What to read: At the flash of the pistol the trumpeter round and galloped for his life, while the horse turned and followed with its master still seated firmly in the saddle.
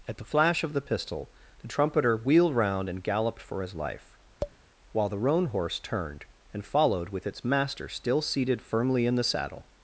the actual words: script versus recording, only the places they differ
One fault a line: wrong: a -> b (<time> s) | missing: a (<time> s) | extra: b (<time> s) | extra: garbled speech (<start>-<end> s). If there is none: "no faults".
extra: wheeled (2.2 s)
extra: roan (5.2 s)